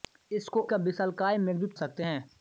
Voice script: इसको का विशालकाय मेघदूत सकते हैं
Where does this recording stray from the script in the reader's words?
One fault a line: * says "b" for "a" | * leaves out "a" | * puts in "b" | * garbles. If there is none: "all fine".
all fine